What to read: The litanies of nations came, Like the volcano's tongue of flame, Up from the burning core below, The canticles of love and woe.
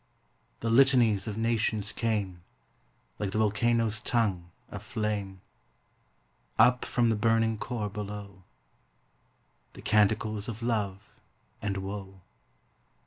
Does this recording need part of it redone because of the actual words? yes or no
no